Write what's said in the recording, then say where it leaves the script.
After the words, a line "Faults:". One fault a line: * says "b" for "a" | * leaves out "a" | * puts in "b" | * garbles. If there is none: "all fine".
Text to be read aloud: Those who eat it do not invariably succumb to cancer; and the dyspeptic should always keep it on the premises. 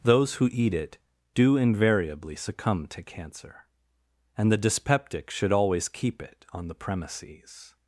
Those who eat it do invariably succumb to cancer; and the dyspeptic should always keep it on the premises.
Faults:
* leaves out "not"